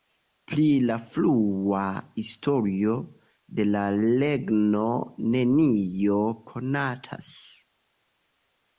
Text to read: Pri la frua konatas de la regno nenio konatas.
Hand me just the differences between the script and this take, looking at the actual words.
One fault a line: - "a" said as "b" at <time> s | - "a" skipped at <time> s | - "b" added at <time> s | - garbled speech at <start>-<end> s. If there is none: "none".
- "konatas" said as "historio" at 2.2 s